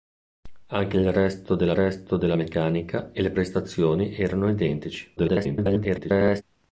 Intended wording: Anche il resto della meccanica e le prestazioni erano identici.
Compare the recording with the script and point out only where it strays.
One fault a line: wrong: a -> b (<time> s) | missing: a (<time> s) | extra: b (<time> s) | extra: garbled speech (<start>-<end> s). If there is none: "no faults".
extra: resto della (1.7 s)
extra: garbled speech (5.2-6.4 s)